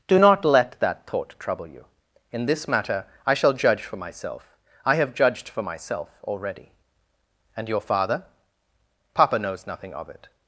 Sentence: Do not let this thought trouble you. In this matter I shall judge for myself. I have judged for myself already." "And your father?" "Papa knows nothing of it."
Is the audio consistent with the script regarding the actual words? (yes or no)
no